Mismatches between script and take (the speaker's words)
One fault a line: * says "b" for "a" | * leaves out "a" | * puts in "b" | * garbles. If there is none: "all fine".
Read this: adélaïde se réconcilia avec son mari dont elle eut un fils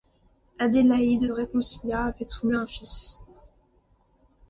* leaves out "se"
* leaves out "mari dont elle"